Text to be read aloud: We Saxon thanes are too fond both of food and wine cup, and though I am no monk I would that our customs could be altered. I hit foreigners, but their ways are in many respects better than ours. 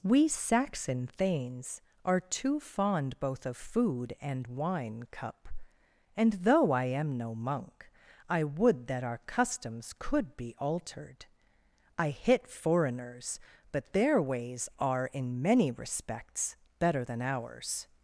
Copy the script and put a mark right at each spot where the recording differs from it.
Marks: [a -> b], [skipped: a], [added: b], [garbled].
We Saxon thanes are too fond both of food and wine cup, and though I am no monk I would that our customs could be altered. I hit foreigners, but their ways are in many respects better than ours.